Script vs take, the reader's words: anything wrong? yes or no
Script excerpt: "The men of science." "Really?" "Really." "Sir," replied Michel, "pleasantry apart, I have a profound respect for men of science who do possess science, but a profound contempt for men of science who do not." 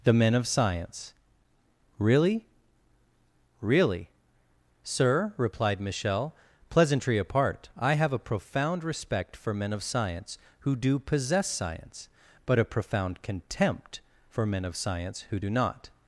no